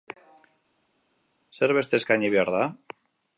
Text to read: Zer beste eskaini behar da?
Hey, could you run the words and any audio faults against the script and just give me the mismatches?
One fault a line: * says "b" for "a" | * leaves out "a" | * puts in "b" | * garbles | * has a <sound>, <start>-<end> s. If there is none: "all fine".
all fine